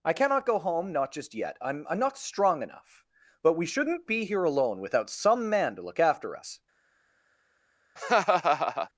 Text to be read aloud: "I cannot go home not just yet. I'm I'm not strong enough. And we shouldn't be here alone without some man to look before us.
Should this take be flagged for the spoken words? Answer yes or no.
yes